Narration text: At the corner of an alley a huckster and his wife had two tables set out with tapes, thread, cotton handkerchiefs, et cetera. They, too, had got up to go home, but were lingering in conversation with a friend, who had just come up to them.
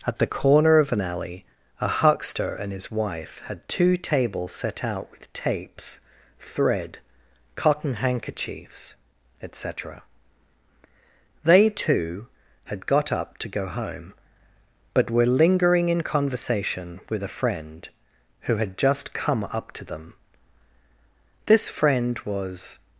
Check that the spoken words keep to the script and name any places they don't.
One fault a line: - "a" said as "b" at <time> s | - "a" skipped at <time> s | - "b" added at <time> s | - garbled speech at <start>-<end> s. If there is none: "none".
- "This friend was" added at 21.5 s